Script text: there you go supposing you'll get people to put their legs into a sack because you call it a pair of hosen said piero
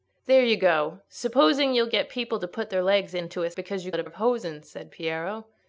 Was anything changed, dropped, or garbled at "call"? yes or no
yes